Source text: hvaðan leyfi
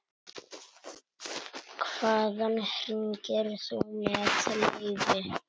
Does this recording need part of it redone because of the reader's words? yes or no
yes